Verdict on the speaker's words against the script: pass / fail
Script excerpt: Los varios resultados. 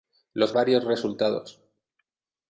pass